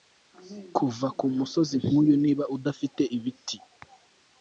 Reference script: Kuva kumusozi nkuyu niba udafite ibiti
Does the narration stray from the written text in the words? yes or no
no